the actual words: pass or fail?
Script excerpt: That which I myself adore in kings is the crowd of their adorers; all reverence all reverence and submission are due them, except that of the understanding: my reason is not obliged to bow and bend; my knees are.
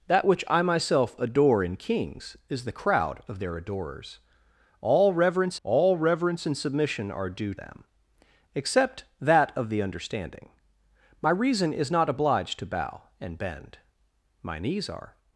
pass